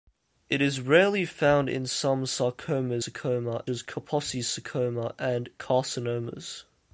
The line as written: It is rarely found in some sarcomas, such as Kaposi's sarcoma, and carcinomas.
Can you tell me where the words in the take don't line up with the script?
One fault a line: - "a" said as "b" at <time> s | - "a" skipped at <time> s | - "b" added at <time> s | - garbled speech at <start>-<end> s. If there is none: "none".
- "such" said as "sarcoma" at 3.0 s